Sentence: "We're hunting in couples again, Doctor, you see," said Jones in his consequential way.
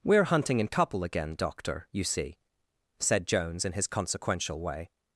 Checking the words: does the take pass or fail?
fail